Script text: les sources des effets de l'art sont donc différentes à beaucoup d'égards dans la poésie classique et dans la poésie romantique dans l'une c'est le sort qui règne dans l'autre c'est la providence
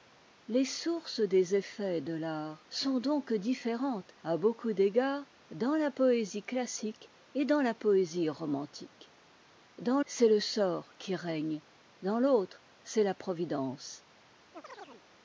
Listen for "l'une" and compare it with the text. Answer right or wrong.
wrong